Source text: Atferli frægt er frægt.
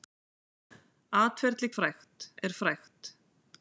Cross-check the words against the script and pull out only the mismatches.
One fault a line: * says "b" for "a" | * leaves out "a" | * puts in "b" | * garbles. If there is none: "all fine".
all fine